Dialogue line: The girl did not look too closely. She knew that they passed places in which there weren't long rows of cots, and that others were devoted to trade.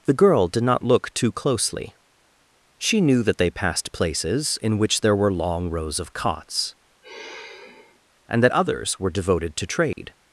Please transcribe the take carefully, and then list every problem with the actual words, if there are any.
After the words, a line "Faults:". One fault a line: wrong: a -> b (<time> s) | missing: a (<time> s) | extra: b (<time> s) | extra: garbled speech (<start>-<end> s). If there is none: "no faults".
The girl did not look too closely. She knew that they passed places in which there were long rows of cots, and that others were devoted to trade.
Faults:
wrong: weren't -> were (5.2 s)